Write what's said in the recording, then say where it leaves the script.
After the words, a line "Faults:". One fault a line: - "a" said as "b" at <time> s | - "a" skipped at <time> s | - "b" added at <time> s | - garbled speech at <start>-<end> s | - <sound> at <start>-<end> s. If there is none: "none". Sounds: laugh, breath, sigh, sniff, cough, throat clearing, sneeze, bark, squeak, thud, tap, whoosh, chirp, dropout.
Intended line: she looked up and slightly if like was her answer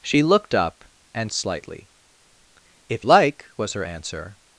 she looked up and slightly if like was her answer
Faults:
none